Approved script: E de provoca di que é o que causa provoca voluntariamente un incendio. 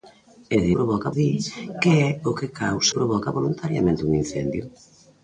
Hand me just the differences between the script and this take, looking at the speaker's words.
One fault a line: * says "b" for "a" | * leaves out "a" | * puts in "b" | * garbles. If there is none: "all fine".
all fine